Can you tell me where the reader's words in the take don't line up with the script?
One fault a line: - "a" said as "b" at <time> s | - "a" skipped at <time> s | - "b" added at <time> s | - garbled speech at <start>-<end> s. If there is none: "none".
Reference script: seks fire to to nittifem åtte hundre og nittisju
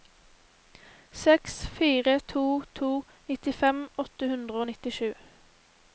none